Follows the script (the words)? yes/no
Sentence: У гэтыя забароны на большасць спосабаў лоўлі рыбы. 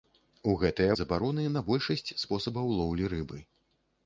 yes